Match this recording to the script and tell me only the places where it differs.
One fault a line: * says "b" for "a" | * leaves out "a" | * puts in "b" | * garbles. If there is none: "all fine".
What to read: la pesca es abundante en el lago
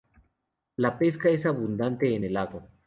all fine